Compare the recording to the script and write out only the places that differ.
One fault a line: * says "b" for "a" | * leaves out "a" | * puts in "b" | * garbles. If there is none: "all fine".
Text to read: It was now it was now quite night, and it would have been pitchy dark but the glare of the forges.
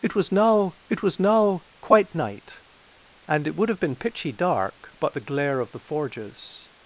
all fine